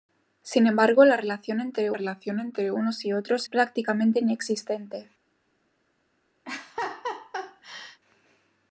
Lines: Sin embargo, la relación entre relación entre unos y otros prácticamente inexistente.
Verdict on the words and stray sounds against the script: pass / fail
fail